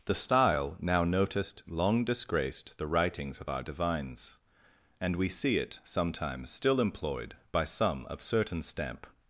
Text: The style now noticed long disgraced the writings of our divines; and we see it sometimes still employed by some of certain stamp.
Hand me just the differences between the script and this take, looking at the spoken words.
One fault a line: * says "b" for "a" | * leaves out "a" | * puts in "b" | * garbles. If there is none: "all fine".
all fine